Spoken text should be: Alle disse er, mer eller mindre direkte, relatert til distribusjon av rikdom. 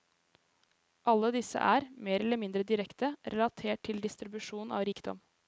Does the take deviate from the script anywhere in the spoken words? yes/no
no